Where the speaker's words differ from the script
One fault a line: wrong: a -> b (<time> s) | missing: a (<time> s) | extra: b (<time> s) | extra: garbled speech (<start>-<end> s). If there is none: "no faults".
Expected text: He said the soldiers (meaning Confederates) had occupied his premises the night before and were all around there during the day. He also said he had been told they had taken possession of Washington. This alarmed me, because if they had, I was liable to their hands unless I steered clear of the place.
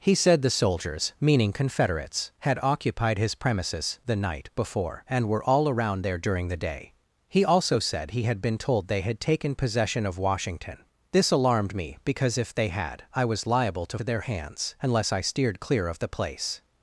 no faults